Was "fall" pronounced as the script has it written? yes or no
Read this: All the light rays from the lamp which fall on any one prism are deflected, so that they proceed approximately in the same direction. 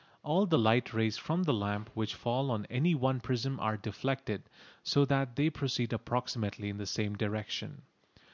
yes